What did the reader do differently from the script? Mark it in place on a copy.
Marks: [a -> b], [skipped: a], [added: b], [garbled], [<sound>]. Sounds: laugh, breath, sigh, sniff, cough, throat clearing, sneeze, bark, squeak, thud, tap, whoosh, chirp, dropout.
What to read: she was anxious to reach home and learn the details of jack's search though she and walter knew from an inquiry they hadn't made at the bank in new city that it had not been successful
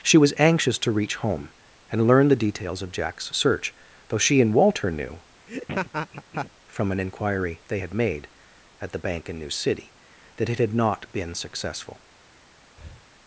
she was anxious to reach home and learn the details of jack's search though she and walter knew [laugh] from an inquiry they [hadn't -> had] made at the bank in new city that it had not been successful [breath]